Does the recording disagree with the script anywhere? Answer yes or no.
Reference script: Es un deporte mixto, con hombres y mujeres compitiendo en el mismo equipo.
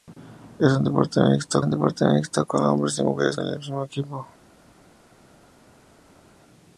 yes